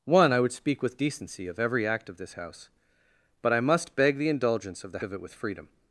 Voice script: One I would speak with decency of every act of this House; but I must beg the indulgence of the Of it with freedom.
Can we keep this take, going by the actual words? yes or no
yes